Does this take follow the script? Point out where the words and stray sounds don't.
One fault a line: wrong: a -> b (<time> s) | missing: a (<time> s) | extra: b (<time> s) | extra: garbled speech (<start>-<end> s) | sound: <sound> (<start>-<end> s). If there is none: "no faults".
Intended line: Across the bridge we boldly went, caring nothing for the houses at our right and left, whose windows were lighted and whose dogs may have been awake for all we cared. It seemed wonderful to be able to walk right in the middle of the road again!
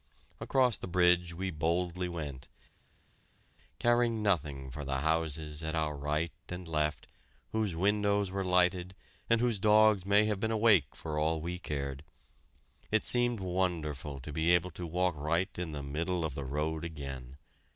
no faults